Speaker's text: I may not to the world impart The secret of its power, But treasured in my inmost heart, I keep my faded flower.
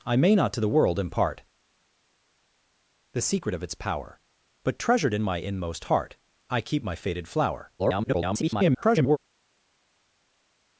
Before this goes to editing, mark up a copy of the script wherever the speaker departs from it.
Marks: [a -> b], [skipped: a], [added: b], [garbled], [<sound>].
I may not to the world impart The secret of its power, But treasured in my inmost heart, I keep my faded flower. [garbled]